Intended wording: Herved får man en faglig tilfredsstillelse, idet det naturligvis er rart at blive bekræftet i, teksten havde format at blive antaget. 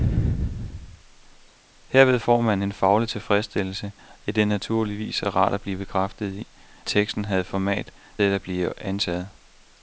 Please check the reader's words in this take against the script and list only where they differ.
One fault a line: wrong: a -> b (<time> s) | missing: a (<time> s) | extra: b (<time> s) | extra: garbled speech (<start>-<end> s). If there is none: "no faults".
no faults